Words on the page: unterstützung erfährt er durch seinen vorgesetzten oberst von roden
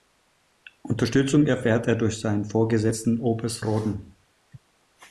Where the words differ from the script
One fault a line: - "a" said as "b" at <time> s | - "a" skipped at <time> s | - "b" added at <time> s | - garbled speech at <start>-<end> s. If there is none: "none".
- "von" skipped at 3.6 s